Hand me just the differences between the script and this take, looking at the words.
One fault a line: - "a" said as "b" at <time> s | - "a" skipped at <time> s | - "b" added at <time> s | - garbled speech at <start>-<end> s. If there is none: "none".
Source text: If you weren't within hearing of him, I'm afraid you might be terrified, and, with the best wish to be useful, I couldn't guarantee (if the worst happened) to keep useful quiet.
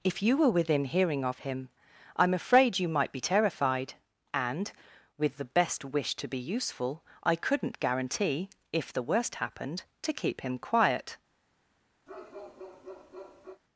- "weren't" said as "were" at 0.3 s
- "useful" said as "him" at 10.4 s